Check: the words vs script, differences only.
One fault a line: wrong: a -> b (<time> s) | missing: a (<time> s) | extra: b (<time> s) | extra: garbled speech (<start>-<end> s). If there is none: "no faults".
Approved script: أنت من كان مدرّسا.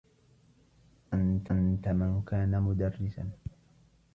extra: أنت (1.5 s)